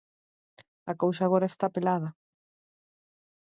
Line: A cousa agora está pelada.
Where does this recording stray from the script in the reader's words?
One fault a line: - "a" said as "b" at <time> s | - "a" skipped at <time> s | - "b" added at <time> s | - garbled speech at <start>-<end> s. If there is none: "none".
none